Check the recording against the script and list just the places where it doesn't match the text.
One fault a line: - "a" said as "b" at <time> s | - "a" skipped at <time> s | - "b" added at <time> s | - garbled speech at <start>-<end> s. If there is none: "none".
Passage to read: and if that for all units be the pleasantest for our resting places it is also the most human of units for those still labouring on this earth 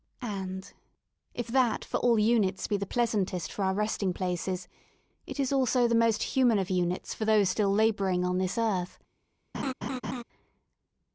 none